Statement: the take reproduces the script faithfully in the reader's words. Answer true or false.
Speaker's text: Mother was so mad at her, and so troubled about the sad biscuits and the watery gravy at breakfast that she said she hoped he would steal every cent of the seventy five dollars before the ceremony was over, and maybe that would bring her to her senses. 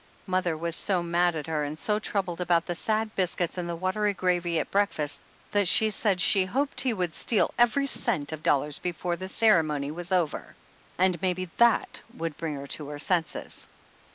false